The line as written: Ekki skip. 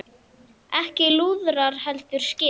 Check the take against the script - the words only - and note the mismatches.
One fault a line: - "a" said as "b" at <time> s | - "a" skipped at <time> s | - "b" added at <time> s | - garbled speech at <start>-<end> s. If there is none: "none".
- "lúðrar heldur" added at 1.2 s